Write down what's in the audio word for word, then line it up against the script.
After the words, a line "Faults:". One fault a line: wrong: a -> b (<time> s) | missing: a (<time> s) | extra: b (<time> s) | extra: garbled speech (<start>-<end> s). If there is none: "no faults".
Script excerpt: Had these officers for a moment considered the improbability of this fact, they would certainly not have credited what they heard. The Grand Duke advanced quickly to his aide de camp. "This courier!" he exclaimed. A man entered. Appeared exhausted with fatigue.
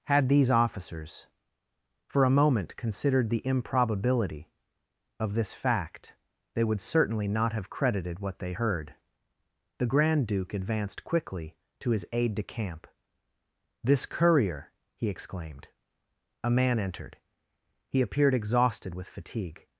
Had these officers for a moment considered the improbability of this fact, they would certainly not have credited what they heard. The Grand Duke advanced quickly to his aide de camp. "This courier!" he exclaimed. A man entered. He appeared exhausted with fatigue.
Faults:
extra: He (17.9 s)